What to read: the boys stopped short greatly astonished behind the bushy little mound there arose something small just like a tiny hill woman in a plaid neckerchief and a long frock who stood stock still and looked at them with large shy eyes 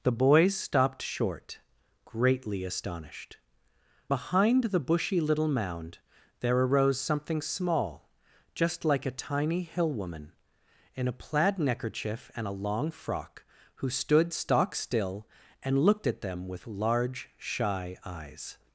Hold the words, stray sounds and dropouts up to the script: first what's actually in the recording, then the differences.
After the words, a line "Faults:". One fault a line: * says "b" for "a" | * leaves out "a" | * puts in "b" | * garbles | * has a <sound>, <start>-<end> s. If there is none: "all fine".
the boys stopped short greatly astonished behind the bushy little mound there arose something small just like a tiny hill woman in a plaid neckerchief and a long frock who stood stock still and looked at them with large shy eyes
Faults:
all fine